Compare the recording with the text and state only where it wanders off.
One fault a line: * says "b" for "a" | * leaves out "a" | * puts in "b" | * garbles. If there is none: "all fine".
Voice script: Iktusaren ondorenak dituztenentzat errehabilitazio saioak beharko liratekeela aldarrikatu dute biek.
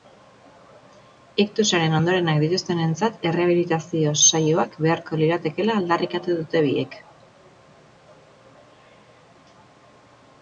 all fine